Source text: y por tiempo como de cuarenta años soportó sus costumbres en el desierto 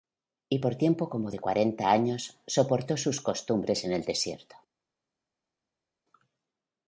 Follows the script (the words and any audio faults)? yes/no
yes